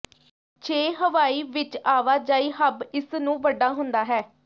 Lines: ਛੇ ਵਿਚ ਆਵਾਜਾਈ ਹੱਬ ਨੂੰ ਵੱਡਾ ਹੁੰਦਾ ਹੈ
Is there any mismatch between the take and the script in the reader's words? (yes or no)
yes